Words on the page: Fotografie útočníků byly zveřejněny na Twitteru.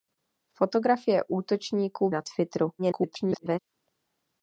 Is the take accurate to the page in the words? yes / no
no